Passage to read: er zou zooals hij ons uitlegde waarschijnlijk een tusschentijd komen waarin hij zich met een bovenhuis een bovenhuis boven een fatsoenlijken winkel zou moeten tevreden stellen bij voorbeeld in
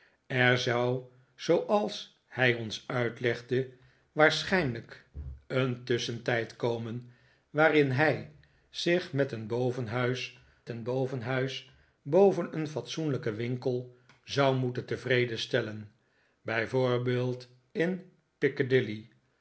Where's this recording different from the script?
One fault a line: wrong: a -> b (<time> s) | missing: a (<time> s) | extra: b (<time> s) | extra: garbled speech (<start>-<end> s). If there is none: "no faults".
no faults